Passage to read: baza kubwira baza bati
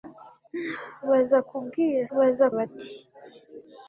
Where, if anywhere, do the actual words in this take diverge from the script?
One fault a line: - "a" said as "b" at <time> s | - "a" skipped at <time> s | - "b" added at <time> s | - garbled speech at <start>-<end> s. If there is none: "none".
none